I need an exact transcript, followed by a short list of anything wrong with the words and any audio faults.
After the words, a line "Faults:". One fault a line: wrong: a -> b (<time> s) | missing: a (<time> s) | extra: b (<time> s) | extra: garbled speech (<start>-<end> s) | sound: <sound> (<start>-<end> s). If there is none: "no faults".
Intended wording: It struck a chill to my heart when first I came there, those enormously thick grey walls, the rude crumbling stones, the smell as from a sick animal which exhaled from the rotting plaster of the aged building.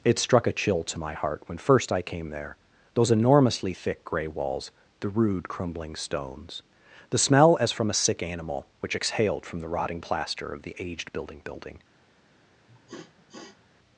It struck a chill to my heart when first I came there, those enormously thick grey walls, the rude crumbling stones, the smell as from a sick animal which exhaled from the rotting plaster of the aged building building.
Faults:
extra: building (11.4 s)
sound: sniff (12.7-13.7 s)